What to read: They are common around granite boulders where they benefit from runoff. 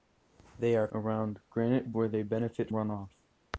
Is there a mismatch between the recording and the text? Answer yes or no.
yes